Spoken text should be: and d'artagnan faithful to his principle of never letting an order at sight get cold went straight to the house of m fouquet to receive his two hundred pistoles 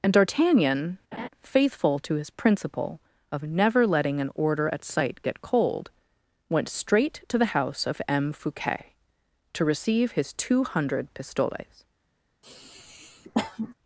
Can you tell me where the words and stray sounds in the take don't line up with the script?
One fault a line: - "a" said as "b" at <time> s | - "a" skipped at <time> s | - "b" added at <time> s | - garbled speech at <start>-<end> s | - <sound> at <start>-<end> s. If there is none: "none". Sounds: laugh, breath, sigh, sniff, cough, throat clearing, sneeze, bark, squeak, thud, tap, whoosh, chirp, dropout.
- laugh at 1.1-1.3 s
- sniff at 12.4-13.7 s